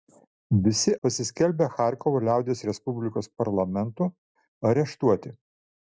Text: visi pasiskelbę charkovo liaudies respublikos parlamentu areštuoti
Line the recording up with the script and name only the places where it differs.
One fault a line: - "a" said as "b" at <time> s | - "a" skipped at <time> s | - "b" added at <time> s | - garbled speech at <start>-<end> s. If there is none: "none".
none